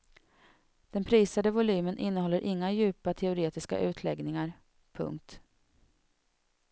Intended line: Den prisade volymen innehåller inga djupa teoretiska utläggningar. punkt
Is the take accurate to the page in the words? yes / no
yes